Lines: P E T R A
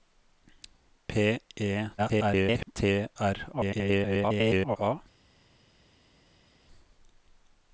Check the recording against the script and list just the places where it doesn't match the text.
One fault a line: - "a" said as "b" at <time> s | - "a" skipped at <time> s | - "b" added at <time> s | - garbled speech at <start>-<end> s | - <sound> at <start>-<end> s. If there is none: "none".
- garbled speech at 2.0-2.7 s
- garbled speech at 3.5-4.8 s